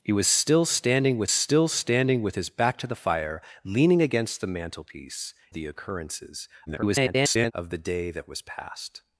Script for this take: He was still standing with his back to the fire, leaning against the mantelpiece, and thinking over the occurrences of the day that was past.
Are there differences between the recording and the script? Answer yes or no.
yes